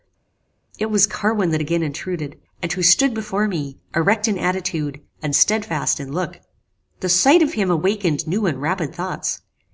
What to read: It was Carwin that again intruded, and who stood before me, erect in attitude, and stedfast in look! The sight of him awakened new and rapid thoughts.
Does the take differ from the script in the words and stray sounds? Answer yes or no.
no